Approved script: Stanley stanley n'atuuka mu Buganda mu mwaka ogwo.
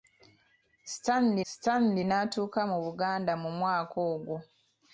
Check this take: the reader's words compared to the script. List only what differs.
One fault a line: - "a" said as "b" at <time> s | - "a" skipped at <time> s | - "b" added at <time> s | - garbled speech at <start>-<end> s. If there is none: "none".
none